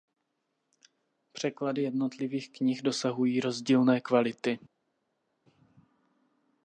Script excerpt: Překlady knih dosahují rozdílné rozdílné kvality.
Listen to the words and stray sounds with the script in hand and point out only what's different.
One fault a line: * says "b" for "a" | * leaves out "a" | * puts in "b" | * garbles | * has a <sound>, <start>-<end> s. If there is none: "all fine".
* puts in "jednotlivých"
* leaves out "rozdílné"